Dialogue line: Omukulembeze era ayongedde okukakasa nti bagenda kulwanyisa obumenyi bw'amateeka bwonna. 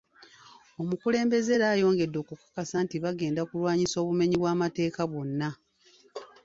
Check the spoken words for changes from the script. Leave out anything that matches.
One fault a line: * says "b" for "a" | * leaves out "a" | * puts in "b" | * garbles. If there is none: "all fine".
all fine